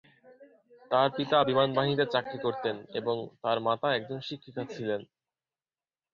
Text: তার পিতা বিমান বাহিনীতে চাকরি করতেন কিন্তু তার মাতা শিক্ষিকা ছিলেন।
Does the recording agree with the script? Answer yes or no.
no